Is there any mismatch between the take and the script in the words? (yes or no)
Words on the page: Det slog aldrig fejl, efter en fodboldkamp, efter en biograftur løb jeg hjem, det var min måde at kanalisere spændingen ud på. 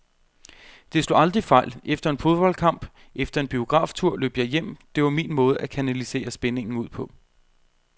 no